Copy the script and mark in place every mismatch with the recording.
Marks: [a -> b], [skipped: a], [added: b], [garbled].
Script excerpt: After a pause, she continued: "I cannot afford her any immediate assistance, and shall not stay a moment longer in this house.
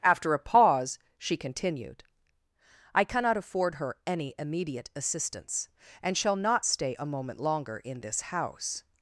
After a pause, she continued: "I cannot afford her any immediate assistance, and shall not stay a moment longer in this house.